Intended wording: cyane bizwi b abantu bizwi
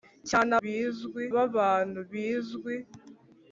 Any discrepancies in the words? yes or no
no